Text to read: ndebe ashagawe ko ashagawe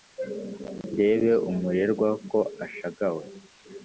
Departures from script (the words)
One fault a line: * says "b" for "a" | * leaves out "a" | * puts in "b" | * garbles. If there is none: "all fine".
* says "umurerwa" for "ashagawe"